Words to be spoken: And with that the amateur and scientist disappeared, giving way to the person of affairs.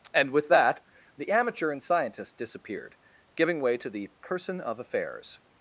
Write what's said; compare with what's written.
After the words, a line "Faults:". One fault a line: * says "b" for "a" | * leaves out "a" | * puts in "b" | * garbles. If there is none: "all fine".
And with that the amateur and scientist disappeared, giving way to the person of affairs.
Faults:
all fine